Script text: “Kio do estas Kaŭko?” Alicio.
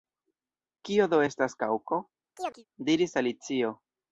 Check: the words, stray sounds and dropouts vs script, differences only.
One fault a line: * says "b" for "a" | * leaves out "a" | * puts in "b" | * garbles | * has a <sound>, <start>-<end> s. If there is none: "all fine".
* has a chirp, 2.4-2.6 s
* puts in "diris"